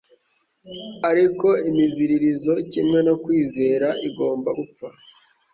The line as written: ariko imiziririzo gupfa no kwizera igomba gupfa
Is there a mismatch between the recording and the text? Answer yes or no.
yes